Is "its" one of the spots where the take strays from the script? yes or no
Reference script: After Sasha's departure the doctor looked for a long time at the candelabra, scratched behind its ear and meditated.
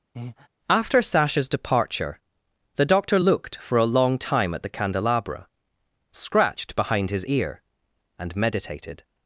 yes